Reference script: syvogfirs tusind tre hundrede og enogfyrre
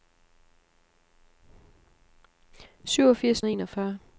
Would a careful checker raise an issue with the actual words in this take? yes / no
yes